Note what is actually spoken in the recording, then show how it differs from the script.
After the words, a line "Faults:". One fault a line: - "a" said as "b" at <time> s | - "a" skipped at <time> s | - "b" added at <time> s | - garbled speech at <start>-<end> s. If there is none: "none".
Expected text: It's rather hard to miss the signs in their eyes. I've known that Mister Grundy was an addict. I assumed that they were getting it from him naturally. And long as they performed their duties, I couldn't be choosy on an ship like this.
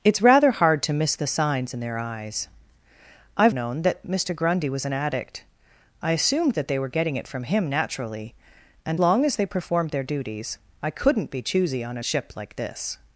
It's rather hard to miss the signs in their eyes. I've known that Mister Grundy was an addict. I assumed that they were getting it from him naturally. And long as they performed their duties, I couldn't be choosy on an ship like this.
Faults:
none